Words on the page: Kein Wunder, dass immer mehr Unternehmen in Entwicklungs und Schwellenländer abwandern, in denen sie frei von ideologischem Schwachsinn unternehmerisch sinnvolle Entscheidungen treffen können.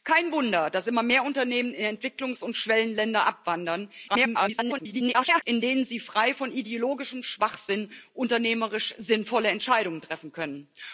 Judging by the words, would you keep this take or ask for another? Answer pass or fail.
fail